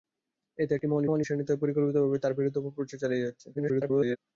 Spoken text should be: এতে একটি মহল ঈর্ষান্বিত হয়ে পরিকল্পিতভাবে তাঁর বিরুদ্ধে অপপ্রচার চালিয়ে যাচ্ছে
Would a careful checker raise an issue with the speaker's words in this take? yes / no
yes